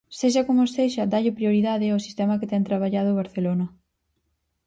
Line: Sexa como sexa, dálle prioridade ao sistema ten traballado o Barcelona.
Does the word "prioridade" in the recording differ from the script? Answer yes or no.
no